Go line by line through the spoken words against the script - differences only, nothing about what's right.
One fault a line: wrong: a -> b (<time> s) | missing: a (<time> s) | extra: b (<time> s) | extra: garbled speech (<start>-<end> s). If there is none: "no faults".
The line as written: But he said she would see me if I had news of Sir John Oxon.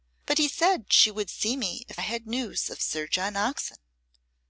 missing: I (2.0 s)